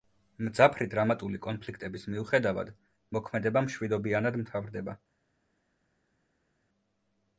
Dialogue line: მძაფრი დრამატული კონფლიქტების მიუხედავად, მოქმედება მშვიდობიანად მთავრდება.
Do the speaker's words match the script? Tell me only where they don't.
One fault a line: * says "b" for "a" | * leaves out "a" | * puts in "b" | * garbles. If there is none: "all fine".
all fine